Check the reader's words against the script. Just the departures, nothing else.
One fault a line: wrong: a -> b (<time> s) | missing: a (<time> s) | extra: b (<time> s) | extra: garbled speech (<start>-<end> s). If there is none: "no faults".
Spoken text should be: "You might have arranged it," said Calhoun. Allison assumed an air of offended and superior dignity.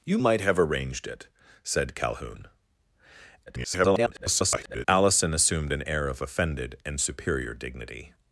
extra: garbled speech (3.5-4.9 s)